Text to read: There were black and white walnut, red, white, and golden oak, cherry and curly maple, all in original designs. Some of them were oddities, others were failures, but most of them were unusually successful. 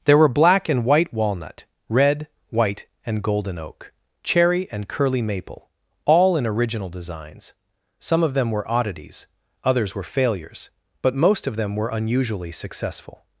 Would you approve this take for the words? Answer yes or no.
yes